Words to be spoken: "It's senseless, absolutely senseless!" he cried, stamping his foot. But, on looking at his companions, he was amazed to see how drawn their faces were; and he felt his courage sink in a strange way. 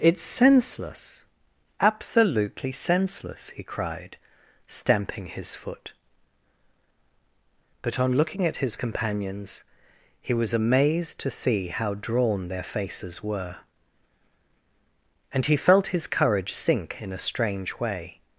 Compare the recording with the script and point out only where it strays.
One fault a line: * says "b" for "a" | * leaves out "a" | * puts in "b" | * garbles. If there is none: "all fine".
all fine